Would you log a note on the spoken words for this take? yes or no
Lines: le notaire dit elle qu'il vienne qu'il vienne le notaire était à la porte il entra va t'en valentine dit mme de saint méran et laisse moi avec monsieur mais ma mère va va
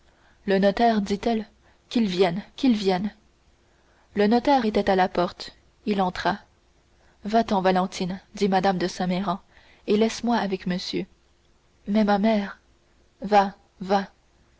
no